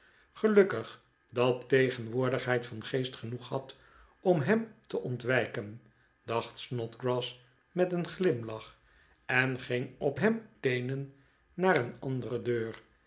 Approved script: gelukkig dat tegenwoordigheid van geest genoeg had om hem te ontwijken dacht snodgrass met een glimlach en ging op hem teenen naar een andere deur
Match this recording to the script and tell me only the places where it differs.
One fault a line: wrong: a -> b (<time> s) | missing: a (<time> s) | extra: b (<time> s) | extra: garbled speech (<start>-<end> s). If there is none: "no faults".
no faults